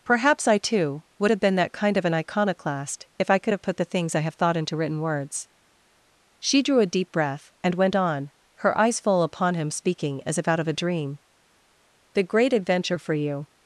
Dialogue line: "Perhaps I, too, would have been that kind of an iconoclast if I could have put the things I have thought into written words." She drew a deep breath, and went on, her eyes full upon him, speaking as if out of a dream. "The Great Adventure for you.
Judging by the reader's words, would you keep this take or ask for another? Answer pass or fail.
pass